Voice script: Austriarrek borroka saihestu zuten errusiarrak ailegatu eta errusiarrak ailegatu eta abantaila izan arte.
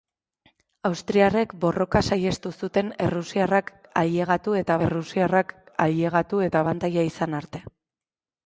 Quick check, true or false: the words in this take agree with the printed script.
true